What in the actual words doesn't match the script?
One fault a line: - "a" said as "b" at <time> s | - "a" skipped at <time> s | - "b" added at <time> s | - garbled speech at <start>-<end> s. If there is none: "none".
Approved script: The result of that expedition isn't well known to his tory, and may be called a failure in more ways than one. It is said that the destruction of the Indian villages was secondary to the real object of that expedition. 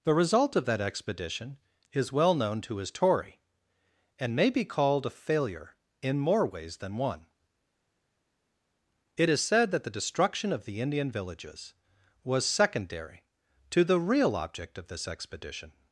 - "isn't" said as "is" at 1.9 s
- "that" said as "this" at 14.9 s